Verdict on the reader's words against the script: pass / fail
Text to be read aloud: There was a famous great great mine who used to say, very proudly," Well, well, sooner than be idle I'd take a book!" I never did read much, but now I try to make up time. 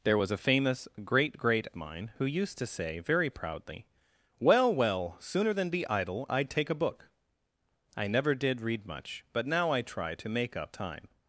pass